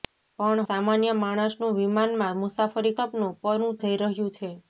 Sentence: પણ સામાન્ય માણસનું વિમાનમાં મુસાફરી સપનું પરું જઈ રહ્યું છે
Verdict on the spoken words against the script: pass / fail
pass